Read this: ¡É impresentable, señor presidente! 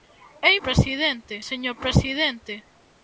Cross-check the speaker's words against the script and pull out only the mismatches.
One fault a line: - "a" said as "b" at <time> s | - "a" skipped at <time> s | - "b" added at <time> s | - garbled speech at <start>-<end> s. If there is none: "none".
- "impresentable" said as "presidente" at 0.7 s